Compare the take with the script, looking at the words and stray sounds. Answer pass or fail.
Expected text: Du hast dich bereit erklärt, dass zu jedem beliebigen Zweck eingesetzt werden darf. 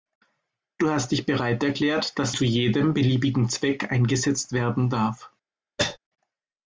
fail